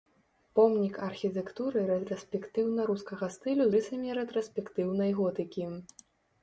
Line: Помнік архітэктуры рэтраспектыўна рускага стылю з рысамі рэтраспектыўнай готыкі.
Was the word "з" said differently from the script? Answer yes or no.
yes